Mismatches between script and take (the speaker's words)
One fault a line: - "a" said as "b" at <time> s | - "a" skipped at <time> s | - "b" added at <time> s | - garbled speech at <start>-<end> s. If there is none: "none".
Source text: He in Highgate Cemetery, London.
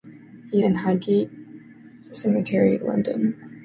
none